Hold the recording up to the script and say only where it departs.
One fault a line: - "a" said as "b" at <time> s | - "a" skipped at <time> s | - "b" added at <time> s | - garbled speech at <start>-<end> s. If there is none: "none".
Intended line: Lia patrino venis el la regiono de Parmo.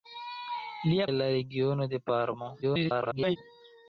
- "patrino venis" skipped at 1.1 s
- garbled speech at 2.6-3.4 s